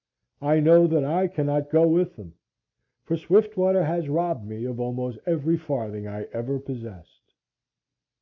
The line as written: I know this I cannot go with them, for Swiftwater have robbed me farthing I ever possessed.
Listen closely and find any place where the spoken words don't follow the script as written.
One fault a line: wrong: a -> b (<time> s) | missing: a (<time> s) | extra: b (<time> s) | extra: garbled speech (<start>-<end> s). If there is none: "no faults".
wrong: this -> that (0.9 s)
wrong: have -> has (3.8 s)
extra: of almost every (4.6 s)